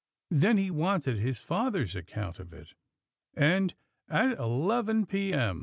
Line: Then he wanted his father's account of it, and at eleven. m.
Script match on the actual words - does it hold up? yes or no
no